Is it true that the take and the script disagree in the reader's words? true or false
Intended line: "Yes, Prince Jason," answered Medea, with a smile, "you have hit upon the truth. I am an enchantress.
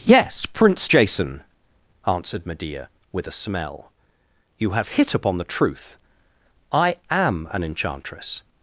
true